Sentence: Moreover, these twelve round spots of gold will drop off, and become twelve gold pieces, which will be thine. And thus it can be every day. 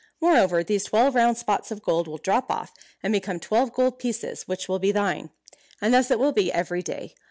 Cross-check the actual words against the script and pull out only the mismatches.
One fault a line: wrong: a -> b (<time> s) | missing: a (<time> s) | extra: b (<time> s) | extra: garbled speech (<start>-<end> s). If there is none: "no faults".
wrong: can -> will (6.2 s)